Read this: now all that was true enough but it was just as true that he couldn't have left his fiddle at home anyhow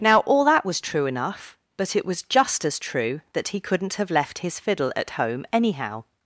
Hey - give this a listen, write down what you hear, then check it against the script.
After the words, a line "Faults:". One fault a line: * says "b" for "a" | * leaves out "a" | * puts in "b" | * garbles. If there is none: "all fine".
now all that was true enough but it was just as true that he couldn't have left his fiddle at home anyhow
Faults:
all fine